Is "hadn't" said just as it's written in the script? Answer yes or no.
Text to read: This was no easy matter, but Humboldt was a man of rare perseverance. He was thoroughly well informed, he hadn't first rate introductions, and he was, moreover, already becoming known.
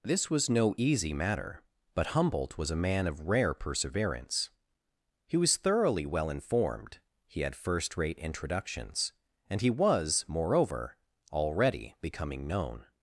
no